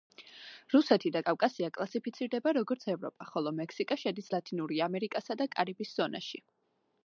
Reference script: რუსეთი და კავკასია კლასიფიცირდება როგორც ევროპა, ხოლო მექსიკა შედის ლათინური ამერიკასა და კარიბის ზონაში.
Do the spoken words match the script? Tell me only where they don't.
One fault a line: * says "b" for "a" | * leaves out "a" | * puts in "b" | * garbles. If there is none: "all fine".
all fine